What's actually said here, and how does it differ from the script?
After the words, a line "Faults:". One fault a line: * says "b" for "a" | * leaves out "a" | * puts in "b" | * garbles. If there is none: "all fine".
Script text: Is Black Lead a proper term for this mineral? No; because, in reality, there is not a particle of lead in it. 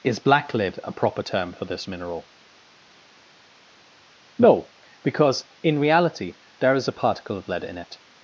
Is Black Lead a proper term for this mineral? No; because, in reality, there is a particle of lead in it.
Faults:
* leaves out "not"